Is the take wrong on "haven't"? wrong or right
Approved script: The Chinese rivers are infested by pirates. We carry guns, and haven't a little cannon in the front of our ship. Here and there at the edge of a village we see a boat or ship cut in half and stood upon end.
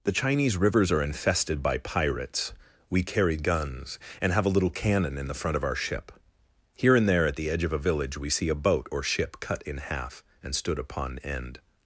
wrong